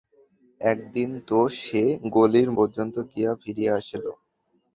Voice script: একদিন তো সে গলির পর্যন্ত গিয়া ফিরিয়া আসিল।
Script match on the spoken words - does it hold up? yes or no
yes